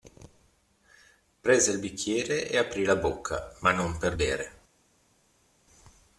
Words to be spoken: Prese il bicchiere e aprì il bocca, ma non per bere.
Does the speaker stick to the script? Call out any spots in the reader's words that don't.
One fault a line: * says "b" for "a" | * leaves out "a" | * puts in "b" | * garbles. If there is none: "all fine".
* says "la" for "il"